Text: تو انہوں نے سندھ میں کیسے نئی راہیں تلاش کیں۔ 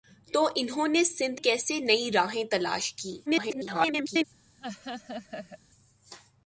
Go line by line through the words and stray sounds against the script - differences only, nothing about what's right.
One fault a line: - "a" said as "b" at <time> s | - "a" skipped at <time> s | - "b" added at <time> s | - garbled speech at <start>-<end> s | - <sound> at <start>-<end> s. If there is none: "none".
- "میں" skipped at 1.4 s
- garbled speech at 3.3-4.2 s
- laugh at 4.6-5.6 s